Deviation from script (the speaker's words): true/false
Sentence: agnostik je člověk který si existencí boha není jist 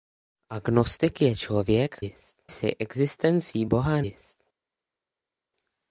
true